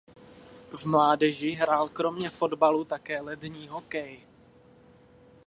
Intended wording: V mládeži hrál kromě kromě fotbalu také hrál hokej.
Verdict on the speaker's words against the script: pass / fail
fail